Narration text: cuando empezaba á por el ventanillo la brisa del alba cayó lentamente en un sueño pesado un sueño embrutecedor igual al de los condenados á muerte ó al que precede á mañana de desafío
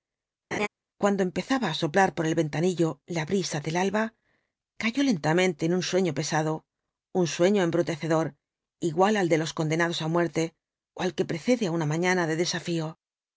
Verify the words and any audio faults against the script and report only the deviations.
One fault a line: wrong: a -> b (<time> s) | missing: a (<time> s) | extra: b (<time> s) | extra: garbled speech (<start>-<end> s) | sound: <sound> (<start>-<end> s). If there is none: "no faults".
sound: laugh (0.5-0.7 s)
extra: soplar (1.8 s)
extra: una (11.8 s)